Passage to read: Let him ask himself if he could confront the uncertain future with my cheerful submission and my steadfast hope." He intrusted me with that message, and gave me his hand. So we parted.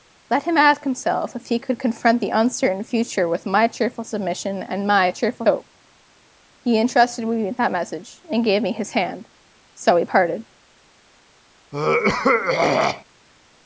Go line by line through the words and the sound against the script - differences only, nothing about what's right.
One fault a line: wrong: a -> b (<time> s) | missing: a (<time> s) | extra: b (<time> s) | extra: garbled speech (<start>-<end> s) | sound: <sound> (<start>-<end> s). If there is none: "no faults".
wrong: steadfast -> cheerful (5.1 s)
sound: throat clearing (11.7-13.0 s)